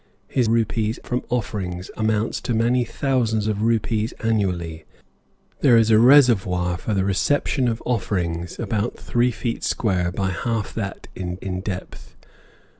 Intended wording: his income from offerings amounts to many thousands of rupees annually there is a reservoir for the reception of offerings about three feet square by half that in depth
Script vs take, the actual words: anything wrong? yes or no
yes